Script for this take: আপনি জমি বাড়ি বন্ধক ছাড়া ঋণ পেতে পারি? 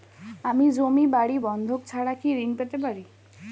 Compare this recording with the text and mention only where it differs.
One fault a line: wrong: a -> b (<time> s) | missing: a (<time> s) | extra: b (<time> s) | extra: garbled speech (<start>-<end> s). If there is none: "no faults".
wrong: আপনি -> আমি (0.4 s)
extra: কি (2.1 s)